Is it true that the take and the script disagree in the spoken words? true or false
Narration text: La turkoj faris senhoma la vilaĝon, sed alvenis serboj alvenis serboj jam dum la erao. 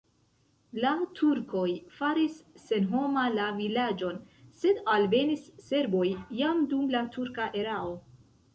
true